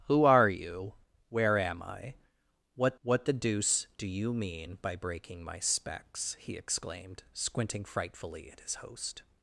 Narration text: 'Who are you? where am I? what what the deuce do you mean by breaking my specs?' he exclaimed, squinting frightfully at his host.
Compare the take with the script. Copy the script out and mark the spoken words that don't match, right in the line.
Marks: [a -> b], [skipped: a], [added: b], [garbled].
'Who are you? where am I? what what the deuce do you mean by breaking my specs?' he exclaimed, squinting frightfully at his host.